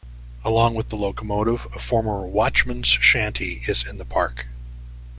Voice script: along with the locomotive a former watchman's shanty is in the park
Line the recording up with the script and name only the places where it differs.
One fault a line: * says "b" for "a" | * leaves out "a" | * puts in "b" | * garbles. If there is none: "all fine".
all fine